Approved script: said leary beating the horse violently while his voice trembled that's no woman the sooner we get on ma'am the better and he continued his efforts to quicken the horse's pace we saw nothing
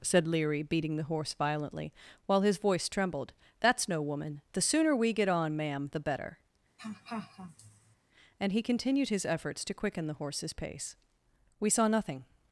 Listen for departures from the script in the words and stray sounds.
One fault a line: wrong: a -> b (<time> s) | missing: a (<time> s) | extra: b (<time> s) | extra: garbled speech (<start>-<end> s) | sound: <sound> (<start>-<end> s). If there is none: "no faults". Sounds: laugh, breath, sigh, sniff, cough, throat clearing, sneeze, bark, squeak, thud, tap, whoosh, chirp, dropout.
sound: laugh (6.8-8.0 s)